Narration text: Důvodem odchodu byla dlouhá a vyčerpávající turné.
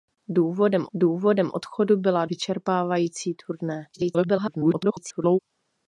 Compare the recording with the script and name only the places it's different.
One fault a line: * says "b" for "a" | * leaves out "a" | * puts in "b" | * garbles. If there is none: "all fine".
* puts in "důvodem"
* leaves out "dlouhá a"
* garbles